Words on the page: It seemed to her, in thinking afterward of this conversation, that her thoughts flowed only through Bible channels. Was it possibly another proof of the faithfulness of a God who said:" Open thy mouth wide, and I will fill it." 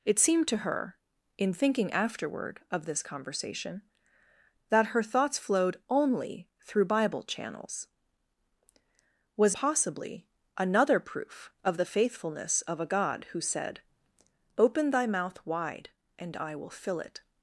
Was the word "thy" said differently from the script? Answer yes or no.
no